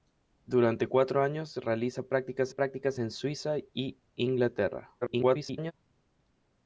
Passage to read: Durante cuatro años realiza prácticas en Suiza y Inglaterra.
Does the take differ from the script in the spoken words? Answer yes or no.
yes